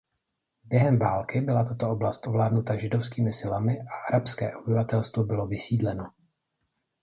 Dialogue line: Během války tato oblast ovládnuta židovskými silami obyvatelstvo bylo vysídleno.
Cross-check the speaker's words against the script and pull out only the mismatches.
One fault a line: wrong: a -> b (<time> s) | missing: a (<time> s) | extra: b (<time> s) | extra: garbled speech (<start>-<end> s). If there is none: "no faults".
extra: byla (1.4 s)
extra: a arabské (3.8 s)